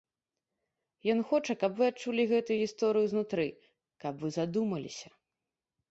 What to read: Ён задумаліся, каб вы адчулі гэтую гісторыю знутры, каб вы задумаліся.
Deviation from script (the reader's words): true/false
true